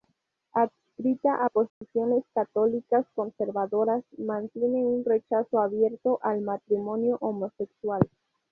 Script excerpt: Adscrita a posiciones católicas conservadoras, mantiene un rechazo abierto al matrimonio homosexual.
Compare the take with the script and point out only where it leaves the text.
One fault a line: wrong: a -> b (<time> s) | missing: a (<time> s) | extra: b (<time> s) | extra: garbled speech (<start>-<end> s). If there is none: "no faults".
no faults